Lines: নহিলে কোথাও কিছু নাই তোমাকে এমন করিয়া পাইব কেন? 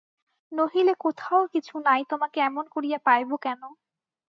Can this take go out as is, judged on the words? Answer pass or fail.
pass